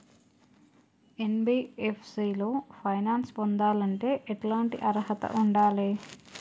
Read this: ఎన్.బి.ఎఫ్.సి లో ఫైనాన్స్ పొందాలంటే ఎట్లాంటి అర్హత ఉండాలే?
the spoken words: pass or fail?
pass